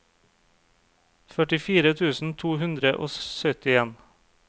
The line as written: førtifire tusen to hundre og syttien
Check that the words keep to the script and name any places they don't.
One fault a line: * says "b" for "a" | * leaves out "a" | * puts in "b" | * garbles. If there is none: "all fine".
all fine